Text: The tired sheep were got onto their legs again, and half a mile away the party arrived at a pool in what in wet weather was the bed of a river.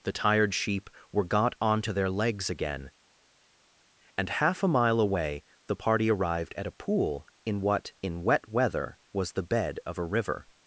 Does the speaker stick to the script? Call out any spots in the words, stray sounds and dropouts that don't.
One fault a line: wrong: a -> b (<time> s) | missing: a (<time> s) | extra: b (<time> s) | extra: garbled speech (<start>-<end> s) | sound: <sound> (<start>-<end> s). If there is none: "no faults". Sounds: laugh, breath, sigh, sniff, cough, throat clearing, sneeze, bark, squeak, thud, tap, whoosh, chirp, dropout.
no faults